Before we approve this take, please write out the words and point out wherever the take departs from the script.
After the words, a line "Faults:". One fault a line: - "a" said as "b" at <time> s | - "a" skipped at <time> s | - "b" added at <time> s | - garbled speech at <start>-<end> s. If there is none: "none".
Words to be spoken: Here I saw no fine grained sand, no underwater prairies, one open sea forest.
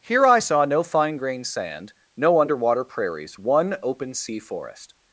Here I saw no fine grained sand, no underwater prairies, one open sea forest.
Faults:
none